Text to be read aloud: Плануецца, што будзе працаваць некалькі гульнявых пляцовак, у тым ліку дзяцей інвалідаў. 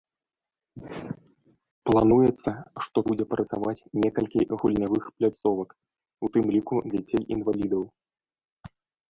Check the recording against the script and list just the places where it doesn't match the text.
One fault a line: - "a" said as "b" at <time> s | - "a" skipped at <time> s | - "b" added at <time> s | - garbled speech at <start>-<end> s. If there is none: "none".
none